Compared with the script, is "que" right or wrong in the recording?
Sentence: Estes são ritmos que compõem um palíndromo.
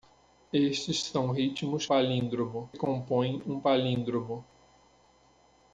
wrong